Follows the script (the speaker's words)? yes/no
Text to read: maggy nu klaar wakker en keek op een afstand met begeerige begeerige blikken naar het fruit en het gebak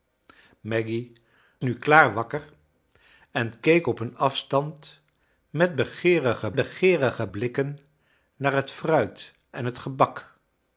yes